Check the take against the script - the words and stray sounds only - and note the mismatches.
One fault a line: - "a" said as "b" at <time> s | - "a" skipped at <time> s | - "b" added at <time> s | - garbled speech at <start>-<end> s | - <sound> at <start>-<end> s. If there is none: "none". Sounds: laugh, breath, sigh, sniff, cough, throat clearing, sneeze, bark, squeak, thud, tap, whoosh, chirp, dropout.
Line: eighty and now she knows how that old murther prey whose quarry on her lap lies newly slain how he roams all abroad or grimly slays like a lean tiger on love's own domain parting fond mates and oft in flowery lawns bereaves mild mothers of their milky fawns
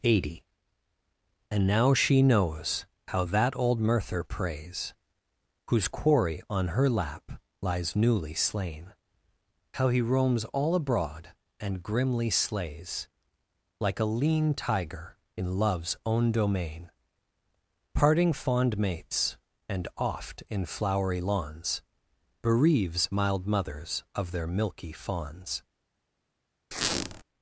- "prey" said as "preys" at 4.2 s
- "or" said as "and" at 11.6 s
- "on" said as "in" at 15.3 s
- squeak at 26.7-27.2 s